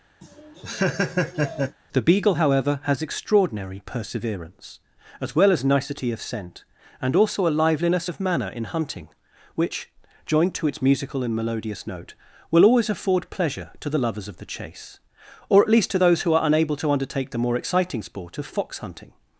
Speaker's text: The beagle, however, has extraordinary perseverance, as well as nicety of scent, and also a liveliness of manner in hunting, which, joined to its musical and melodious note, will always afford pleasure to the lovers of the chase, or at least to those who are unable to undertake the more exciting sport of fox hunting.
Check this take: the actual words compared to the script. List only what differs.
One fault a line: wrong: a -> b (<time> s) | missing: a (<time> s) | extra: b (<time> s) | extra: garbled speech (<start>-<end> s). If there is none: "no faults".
no faults